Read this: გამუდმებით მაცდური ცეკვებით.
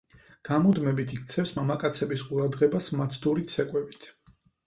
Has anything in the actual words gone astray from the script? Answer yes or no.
yes